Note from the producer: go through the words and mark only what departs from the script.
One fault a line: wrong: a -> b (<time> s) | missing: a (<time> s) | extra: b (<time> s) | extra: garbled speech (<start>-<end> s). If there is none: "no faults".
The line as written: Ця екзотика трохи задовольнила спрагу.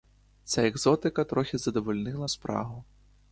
no faults